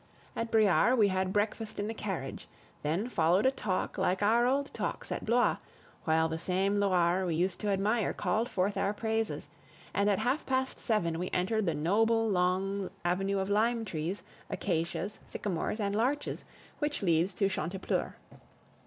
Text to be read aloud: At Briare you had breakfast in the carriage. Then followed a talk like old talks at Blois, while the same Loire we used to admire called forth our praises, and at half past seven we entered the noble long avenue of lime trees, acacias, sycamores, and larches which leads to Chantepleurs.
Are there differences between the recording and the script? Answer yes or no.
yes